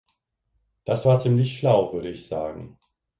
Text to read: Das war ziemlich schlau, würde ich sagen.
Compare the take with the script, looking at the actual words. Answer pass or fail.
pass